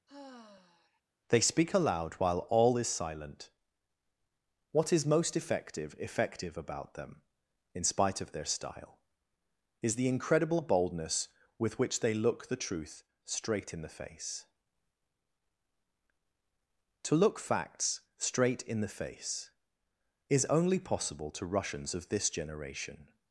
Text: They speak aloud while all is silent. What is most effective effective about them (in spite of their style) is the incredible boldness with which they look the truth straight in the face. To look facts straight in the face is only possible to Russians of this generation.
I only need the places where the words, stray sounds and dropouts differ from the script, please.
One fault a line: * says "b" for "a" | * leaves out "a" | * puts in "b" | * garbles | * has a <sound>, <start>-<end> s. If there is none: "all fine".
* has a sigh, 0.1-1.0 s